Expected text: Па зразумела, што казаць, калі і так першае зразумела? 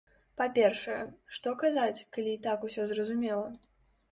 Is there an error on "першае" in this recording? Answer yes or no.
yes